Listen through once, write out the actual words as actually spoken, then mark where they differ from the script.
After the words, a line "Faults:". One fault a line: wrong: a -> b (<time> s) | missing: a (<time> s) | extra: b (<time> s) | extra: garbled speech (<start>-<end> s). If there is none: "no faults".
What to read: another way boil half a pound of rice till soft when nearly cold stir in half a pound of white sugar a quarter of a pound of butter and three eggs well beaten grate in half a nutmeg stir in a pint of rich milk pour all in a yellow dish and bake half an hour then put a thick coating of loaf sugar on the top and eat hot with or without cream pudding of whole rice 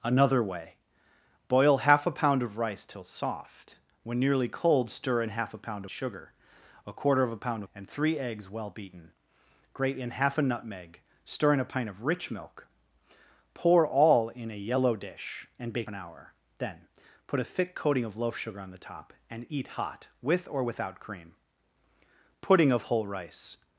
another way boil half a pound of rice till soft when nearly cold stir in half a pound sugar a quarter of a pound and three eggs well beaten grate in half a nutmeg stir in a pint of rich milk pour all in a yellow dish and bake an hour then put a thick coating of loaf sugar on the top and eat hot with or without cream pudding of whole rice
Faults:
missing: of white (5.8 s)
missing: of butter (7.6 s)
missing: half (15.9 s)